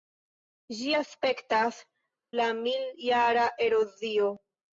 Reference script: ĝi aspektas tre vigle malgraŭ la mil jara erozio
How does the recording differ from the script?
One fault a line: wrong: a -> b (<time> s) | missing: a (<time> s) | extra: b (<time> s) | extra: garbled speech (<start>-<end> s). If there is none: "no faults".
missing: tre vigle malgraŭ (1.8 s)